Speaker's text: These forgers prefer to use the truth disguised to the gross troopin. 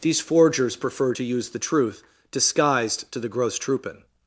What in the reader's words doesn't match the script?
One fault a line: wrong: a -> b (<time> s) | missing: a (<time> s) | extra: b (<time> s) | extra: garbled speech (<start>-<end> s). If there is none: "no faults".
no faults